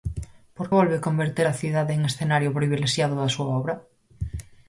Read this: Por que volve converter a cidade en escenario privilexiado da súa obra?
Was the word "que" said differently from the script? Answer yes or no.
yes